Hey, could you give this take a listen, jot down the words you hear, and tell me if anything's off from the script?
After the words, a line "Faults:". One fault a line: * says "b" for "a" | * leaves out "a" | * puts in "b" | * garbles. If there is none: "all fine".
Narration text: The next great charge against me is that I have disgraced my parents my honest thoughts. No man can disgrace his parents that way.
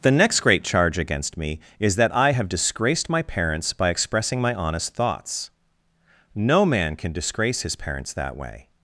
The next great charge against me is that I have disgraced my parents by expressing my honest thoughts. No man can disgrace his parents that way.
Faults:
* puts in "by expressing"